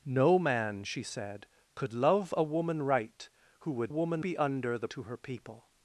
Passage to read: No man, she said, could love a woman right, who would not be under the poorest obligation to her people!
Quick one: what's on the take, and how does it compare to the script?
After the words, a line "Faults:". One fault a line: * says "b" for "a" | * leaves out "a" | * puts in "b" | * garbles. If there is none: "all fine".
No man, she said, could love a woman right, who would woman be under the to her people!
Faults:
* says "woman" for "not"
* leaves out "poorest obligation"